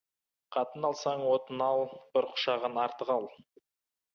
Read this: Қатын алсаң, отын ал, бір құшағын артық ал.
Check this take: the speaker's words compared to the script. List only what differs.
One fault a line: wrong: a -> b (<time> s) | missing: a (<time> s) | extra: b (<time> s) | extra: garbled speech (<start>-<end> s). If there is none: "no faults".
no faults